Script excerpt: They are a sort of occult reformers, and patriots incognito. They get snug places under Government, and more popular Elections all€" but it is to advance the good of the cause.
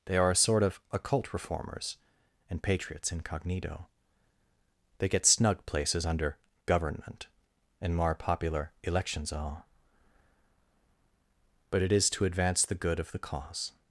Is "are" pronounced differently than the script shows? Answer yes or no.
no